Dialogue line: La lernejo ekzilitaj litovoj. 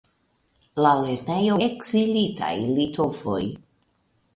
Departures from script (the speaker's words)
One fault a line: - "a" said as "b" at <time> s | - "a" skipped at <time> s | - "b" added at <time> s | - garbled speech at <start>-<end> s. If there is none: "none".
none